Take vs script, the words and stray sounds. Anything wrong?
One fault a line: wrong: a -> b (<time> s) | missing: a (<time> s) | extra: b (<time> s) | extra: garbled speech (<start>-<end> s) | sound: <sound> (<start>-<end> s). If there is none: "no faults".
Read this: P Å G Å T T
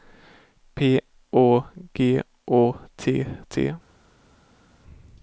no faults